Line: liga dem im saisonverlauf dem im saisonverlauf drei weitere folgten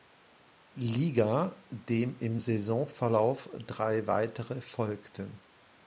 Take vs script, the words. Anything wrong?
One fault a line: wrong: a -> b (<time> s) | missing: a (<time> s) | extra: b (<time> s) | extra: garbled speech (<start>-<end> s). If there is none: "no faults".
missing: dem im saisonverlauf (3.5 s)